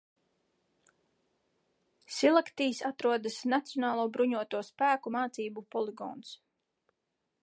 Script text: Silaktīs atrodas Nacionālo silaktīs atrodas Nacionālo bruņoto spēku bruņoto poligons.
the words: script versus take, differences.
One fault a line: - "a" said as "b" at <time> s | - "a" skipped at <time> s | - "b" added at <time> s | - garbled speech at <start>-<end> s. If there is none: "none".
- "silaktīs atrodas Nacionālo" skipped at 4.1 s
- "bruņoto" said as "mācību" at 5.2 s